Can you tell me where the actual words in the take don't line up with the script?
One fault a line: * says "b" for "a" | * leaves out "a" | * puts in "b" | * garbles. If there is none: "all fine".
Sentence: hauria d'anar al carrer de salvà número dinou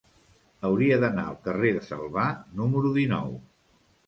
all fine